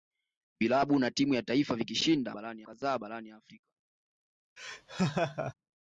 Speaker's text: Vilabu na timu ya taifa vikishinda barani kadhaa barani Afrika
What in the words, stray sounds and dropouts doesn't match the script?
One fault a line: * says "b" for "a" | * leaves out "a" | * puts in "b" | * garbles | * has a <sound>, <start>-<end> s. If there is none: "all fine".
* has a laugh, 4.6-5.5 s